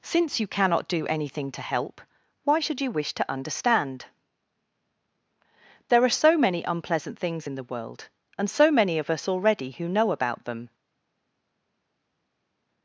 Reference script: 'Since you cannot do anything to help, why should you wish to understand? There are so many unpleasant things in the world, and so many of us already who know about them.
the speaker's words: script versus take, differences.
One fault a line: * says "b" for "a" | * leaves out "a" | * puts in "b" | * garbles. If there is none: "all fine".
all fine